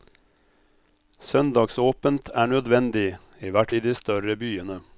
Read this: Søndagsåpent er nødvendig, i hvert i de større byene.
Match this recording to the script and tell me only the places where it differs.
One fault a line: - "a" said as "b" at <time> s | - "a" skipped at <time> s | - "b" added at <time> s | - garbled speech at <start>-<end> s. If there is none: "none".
none